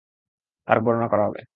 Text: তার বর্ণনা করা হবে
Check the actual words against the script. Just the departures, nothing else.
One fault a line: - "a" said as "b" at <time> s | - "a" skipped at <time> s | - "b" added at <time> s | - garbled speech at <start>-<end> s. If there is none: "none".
none